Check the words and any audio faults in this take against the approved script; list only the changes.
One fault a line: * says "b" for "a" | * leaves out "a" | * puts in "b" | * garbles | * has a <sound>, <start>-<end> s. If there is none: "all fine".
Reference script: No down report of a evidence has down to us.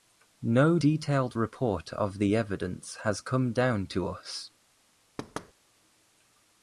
* says "detailed" for "down"
* says "the" for "a"
* puts in "come"
* has a thud, 5.2-5.5 s